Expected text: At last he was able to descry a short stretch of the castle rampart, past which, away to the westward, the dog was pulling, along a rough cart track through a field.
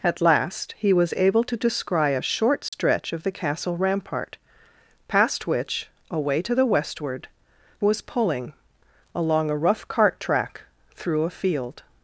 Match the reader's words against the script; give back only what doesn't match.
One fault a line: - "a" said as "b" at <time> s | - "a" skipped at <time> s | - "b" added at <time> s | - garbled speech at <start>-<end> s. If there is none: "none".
- "the dog" skipped at 7.3 s